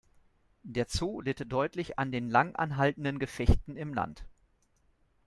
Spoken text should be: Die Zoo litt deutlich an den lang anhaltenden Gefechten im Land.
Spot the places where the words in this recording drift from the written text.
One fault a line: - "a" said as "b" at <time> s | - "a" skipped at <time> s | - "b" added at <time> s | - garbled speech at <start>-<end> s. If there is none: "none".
- "Die" said as "Der" at 0.6 s